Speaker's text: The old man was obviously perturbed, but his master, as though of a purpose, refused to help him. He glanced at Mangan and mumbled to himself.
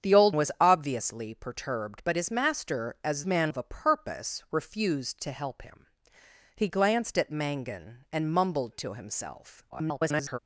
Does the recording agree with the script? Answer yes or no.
no